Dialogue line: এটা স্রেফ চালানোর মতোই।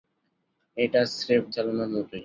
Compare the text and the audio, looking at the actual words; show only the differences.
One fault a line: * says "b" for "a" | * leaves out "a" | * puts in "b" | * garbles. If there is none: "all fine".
all fine